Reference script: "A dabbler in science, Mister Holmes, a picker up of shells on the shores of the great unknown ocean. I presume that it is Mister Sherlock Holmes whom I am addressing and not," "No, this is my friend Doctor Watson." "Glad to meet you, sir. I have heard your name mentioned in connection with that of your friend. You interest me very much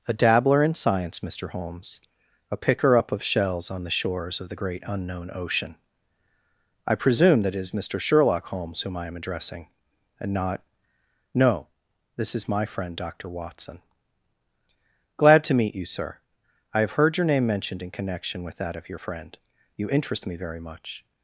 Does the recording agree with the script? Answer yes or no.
yes